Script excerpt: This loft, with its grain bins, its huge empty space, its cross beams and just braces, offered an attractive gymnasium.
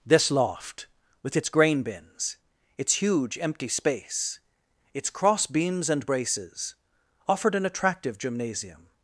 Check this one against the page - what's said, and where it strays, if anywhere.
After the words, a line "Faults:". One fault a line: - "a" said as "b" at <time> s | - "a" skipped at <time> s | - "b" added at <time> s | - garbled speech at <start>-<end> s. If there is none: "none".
This loft, with its grain bins, its huge empty space, its cross beams and braces, offered an attractive gymnasium.
Faults:
- "just" skipped at 6.1 s